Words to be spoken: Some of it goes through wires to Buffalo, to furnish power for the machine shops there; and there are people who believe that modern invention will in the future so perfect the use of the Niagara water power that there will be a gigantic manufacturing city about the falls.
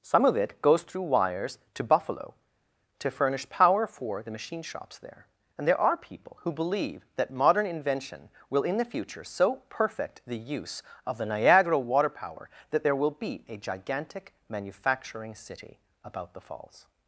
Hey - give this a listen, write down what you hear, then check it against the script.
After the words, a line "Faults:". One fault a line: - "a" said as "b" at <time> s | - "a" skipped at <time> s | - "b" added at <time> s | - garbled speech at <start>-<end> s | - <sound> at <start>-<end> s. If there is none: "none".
Some of it goes through wires to Buffalo, to furnish power for the machine shops there; and there are people who believe that modern invention will in the future so perfect the use of the Niagara water power that there will be a gigantic manufacturing city about the falls.
Faults:
none